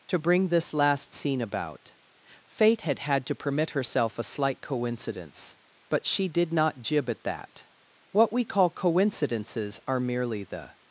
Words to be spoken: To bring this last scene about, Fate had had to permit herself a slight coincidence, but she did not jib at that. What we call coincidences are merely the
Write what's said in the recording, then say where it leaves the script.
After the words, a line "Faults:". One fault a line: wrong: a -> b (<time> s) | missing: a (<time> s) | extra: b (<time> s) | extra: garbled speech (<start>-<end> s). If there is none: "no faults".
To bring this last scene about, Fate had had to permit herself a slight coincidence, but she did not jib at that. What we call coincidences are merely the
Faults:
no faults